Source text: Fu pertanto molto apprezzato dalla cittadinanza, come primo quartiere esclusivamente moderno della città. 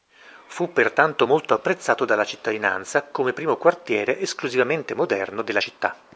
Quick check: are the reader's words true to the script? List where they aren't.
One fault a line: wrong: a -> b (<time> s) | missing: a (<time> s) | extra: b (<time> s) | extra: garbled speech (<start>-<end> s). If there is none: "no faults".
no faults